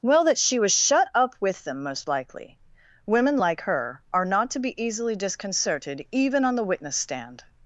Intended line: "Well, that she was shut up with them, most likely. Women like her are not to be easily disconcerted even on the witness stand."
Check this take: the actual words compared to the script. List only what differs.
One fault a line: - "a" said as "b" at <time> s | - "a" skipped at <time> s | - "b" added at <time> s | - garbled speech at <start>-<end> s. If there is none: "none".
none